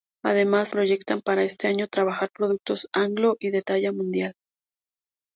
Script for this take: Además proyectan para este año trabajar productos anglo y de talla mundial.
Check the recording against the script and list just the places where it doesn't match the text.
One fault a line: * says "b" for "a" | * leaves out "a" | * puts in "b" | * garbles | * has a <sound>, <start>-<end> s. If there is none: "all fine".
all fine